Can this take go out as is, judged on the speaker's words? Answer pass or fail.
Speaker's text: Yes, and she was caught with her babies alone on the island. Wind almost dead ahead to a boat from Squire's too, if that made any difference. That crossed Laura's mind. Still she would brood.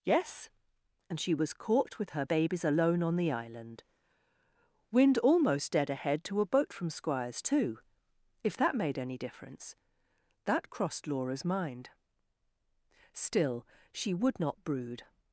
fail